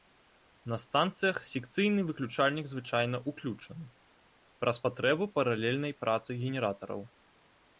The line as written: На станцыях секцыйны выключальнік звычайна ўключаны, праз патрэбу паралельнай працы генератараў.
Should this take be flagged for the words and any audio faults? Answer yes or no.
no